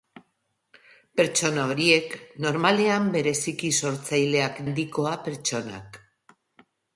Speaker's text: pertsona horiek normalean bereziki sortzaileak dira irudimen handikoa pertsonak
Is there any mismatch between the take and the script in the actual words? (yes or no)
yes